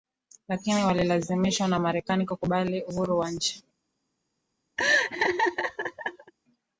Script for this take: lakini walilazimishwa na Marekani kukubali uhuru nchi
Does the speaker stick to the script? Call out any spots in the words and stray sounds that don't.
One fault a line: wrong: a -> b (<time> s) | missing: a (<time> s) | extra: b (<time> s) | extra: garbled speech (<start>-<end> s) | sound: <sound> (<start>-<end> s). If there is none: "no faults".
extra: wa (3.2 s)
sound: laugh (4.8-6.3 s)